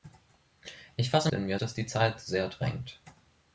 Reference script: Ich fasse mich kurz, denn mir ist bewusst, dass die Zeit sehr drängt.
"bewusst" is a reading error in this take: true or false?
true